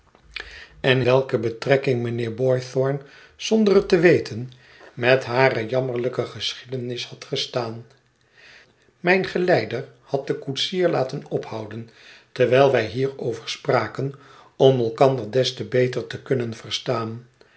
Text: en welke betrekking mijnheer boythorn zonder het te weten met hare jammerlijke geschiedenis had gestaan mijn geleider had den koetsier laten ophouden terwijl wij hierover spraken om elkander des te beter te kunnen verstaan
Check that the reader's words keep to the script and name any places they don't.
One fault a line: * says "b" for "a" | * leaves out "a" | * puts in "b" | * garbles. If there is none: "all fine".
all fine